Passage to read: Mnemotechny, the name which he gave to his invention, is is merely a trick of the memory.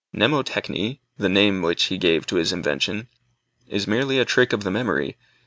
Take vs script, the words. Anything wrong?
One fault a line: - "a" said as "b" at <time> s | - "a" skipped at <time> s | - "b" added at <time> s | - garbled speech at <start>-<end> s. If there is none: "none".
- "is" skipped at 3.9 s